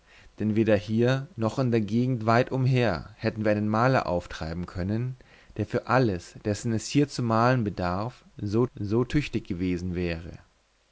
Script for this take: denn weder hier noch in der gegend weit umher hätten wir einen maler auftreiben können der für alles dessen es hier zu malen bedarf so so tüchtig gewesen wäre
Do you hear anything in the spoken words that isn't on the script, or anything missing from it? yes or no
no